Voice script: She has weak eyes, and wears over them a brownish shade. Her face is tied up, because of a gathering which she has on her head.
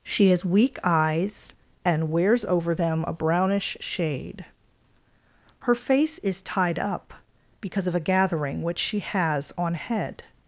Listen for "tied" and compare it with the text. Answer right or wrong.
right